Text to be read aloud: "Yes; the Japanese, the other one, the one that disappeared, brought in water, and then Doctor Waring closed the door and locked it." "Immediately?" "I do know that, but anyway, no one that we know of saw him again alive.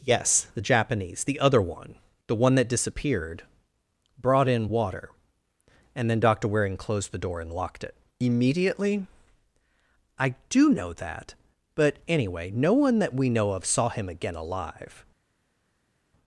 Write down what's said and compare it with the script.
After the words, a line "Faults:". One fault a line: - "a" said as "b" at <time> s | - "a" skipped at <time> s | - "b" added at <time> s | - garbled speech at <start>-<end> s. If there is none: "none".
"Yes; the Japanese, the other one, the one that disappeared, brought in water, and then Doctor Waring closed the door and locked it." "Immediately?" "I do know that, but anyway, no one that we know of saw him again alive.
Faults:
none